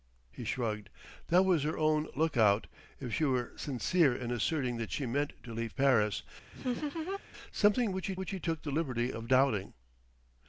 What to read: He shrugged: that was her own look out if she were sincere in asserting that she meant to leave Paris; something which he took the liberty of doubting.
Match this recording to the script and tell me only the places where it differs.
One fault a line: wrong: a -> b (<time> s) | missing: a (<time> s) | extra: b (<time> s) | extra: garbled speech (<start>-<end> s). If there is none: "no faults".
extra: which he (8.2 s)